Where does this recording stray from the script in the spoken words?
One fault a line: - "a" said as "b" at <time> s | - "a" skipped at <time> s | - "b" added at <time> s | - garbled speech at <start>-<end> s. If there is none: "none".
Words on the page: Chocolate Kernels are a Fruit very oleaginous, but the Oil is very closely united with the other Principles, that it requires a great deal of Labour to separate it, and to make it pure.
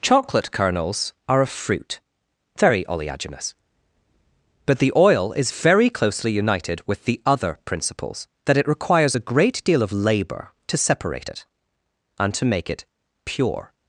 none